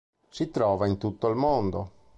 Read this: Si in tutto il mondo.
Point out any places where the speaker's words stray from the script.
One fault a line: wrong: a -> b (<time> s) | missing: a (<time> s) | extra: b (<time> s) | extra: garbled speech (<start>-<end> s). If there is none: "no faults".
extra: trova (0.5 s)